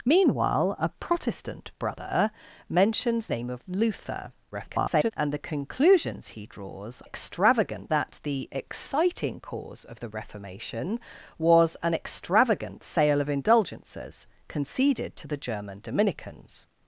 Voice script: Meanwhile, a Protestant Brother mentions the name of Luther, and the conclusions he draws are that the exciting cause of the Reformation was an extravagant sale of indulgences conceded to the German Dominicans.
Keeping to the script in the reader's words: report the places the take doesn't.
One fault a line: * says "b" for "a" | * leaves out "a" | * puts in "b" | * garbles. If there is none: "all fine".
* leaves out "the"
* garbles
* says "extravagant" for "are"